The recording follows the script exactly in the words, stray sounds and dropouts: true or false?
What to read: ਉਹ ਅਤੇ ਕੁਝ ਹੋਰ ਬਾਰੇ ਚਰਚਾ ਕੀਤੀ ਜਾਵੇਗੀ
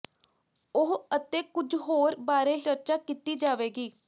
true